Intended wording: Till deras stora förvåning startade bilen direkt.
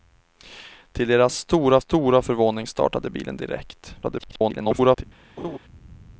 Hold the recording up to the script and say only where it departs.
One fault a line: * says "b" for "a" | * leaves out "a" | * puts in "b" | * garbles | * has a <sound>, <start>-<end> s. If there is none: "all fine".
* puts in "stora"
* garbles
* has a laugh, 5.4-5.6 s